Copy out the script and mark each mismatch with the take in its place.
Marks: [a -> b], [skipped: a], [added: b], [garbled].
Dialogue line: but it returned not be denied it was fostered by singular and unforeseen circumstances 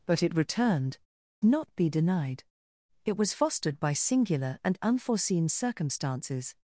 but it returned not be denied it was fostered by singular and unforeseen circumstances